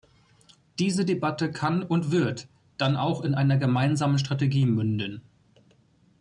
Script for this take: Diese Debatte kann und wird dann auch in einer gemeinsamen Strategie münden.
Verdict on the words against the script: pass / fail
pass